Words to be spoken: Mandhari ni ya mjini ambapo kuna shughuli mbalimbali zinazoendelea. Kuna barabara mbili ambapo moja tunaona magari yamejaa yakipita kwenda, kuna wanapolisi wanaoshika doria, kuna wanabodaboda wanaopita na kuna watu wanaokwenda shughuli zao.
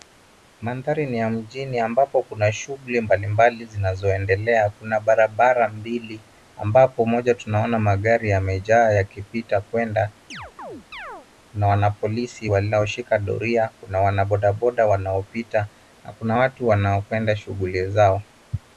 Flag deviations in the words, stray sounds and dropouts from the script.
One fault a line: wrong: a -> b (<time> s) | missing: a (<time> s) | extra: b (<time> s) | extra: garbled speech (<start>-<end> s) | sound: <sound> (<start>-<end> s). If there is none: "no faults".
sound: chirp (10.3-11.3 s)